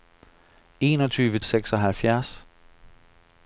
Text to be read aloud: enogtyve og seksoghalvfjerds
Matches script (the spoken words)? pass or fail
pass